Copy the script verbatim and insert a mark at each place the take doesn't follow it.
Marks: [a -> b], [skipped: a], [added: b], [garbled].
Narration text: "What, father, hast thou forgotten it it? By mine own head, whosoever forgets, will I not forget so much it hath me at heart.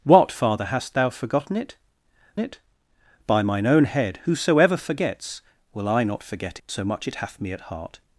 "What, father, hast thou forgotten it it? By mine own head, whosoever forgets, will I not forget so much it hath me at heart.